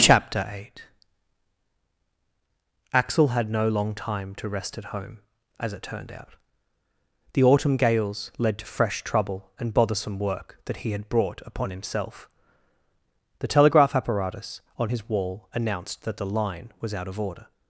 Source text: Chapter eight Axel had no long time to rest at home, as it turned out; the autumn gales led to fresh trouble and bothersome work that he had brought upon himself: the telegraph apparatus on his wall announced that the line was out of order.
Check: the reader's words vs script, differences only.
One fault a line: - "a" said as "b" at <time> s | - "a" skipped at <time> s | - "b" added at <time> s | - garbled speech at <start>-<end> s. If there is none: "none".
none